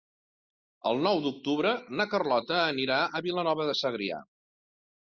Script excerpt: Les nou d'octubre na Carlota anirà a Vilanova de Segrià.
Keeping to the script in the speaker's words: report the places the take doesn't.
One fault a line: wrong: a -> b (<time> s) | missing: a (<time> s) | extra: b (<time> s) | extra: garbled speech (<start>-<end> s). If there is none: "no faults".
wrong: Les -> El (0.9 s)